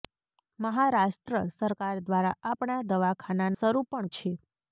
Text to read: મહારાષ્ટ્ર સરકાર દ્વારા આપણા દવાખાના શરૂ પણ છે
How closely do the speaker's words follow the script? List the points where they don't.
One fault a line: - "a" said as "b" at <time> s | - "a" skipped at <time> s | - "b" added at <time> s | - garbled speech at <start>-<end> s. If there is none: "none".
none